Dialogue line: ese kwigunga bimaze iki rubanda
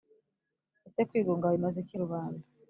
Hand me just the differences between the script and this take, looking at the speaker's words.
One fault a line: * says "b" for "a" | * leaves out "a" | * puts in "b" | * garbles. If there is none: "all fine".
all fine